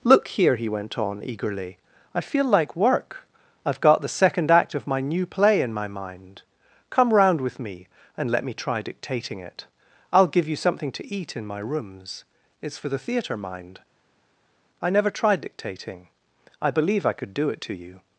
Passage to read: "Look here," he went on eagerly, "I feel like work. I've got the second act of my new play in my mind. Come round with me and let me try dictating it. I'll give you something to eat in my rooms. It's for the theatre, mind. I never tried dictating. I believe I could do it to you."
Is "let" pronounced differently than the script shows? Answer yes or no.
no